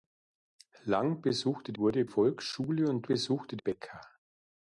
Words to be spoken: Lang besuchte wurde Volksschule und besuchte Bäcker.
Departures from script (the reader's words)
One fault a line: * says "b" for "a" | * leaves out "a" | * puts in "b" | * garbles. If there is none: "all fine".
all fine